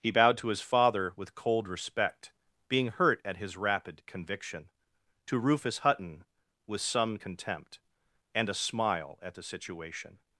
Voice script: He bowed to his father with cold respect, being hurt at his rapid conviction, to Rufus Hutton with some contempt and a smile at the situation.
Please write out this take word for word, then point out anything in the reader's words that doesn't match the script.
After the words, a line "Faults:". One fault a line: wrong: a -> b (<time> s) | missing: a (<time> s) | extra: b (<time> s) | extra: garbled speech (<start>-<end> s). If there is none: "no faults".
He bowed to his father with cold respect, being hurt at his rapid conviction, to Rufus Hutton with some contempt and a smile at the situation.
Faults:
no faults